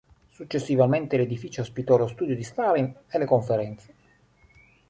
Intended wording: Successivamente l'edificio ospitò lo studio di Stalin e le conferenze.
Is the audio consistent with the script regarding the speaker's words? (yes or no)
yes